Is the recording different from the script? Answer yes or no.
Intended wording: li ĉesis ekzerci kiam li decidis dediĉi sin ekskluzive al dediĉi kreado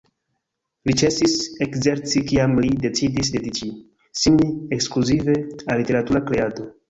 yes